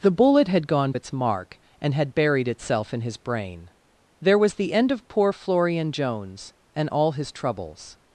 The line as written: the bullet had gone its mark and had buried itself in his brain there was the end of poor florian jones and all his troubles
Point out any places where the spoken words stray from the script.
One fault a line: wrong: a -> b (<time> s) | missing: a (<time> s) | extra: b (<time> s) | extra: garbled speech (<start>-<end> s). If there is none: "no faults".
no faults